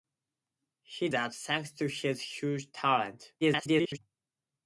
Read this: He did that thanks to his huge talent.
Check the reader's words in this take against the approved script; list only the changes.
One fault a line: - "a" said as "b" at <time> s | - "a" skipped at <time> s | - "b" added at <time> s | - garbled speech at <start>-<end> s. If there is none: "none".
- "did" skipped at 1.1 s
- garbled speech at 3.4-4.0 s